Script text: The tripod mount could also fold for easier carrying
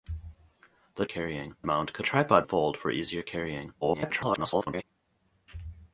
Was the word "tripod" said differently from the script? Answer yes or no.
yes